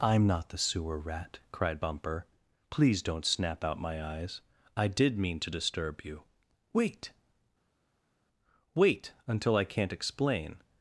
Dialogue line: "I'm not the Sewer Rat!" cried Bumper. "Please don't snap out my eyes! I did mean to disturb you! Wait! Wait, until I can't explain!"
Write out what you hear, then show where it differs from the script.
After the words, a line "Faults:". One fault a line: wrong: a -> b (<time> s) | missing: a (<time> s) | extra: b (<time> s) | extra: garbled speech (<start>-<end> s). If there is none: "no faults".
"I'm not the Sewer Rat!" cried Bumper. "Please don't snap out my eyes! I did mean to disturb you! Wait! Wait, until I can't explain!"
Faults:
no faults